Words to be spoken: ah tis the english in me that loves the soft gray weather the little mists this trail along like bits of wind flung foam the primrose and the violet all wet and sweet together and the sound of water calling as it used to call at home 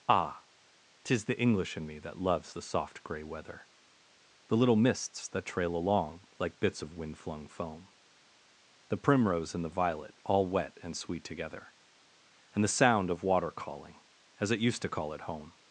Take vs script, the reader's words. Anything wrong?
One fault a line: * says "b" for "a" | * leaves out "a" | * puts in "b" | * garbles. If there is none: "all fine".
* says "that" for "this"